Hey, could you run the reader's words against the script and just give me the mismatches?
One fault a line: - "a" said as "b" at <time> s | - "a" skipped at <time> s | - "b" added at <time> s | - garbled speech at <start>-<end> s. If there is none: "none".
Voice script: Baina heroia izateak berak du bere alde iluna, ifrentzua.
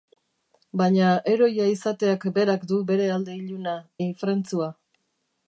none